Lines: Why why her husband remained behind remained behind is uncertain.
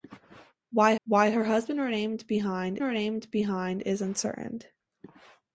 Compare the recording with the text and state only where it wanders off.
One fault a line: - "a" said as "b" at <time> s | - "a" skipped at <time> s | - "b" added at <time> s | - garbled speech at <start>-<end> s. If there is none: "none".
none